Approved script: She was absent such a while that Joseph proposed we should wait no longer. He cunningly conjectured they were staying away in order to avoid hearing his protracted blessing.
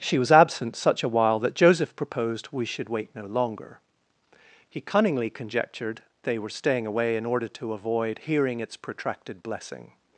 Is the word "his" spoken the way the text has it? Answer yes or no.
no